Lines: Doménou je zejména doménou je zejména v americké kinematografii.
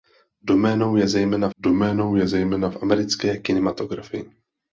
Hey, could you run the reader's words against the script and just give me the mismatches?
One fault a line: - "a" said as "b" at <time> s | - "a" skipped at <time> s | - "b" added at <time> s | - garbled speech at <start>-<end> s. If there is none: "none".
none